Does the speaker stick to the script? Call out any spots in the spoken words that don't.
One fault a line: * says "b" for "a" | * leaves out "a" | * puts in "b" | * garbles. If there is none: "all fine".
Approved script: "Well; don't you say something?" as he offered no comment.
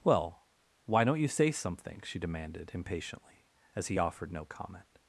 * puts in "why"
* puts in "she demanded impatiently"